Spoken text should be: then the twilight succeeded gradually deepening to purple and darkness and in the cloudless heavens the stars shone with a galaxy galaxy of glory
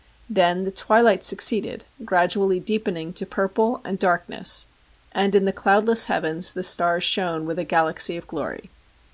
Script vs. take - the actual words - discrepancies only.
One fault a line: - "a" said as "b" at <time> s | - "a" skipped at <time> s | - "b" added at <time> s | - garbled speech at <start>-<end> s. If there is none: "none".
- "galaxy" skipped at 8.2 s